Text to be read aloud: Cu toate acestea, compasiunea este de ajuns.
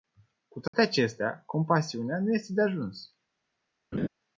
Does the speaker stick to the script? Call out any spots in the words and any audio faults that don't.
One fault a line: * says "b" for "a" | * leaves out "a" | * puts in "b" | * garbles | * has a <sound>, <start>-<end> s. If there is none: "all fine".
* has a dropout, 0.7-0.7 s
* puts in "nu"
* has a laugh, 3.9-4.1 s